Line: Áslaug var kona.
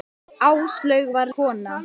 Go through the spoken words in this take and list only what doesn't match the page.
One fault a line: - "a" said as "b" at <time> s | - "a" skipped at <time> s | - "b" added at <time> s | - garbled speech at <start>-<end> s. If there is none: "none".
none